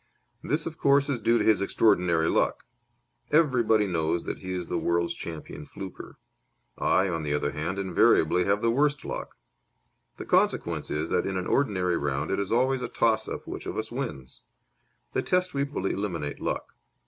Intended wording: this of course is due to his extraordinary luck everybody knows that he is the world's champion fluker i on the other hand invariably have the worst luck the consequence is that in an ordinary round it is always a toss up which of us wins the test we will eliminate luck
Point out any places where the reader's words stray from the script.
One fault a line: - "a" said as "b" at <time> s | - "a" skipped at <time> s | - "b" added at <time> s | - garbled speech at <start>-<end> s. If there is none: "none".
none